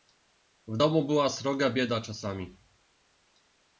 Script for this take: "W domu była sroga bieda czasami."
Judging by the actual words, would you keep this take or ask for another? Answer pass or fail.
pass